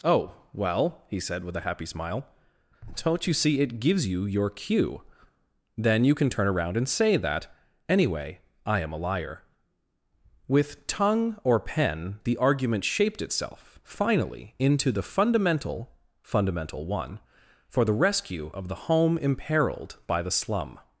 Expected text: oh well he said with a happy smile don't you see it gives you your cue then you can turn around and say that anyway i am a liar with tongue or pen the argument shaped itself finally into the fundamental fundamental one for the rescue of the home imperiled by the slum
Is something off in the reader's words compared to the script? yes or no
no